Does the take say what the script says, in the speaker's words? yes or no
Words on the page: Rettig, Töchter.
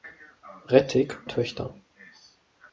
yes